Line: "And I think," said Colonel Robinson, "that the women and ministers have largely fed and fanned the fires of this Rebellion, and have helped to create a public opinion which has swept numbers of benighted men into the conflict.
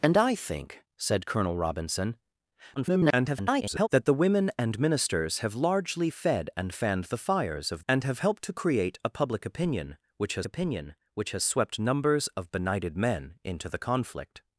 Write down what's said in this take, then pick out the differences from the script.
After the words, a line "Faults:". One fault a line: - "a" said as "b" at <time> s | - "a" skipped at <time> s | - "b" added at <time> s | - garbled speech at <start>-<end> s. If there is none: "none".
"And I think," said Colonel Robinson, [garbled] "that the women and ministers have largely fed and fanned the fires of and have helped to create a public opinion which has opinion which has swept numbers of benighted men into the conflict.
Faults:
- garbled speech at 2.8-3.9 s
- "this Rebellion" skipped at 7.8 s
- "opinion which has" added at 10.4 s